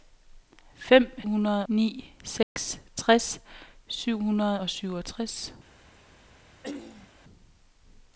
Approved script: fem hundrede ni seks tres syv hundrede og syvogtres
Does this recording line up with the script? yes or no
yes